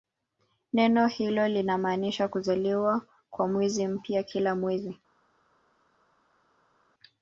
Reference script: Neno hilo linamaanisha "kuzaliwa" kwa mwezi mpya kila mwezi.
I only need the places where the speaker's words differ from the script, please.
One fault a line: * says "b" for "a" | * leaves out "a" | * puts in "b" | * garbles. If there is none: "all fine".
all fine